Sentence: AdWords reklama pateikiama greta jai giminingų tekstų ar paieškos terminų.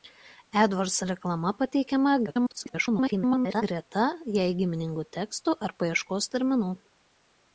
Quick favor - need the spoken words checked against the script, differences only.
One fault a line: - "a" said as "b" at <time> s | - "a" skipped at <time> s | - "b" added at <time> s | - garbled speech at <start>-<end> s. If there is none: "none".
- garbled speech at 2.3-3.6 s